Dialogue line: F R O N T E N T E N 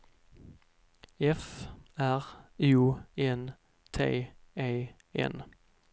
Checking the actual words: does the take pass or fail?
fail